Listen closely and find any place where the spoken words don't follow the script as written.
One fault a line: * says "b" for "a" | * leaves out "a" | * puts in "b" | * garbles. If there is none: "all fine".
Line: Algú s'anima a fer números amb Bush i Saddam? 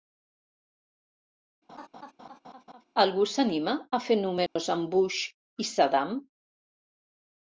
all fine